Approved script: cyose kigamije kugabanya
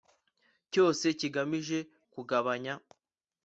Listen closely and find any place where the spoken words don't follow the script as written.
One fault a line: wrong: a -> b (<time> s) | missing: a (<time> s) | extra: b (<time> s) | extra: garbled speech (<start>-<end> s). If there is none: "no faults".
no faults